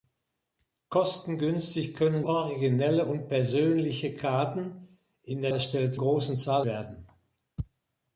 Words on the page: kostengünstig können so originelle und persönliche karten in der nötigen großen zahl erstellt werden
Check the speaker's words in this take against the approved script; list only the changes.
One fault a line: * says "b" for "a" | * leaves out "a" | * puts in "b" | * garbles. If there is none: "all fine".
* leaves out "so"
* says "erstellt" for "nötigen"
* leaves out "erstellt"